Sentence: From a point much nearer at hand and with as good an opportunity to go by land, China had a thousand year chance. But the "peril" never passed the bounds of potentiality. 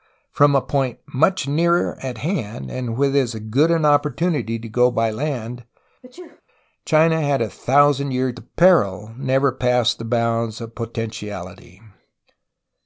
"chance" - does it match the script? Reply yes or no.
no